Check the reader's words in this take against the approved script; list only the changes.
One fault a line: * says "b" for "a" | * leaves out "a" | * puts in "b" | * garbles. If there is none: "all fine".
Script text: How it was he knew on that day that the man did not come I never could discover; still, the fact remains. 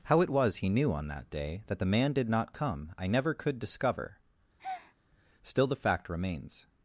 all fine